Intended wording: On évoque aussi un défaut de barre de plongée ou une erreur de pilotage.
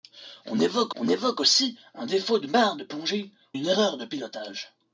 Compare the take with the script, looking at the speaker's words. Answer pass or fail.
fail